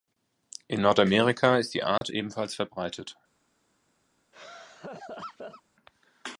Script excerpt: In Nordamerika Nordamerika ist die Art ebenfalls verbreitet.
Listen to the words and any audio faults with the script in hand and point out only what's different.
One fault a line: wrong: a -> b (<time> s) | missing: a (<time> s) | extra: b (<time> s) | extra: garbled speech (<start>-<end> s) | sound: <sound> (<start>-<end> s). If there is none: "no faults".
missing: Nordamerika (1.6 s)
sound: dropout (2.0-2.0 s)
sound: laugh (4.3-5.6 s)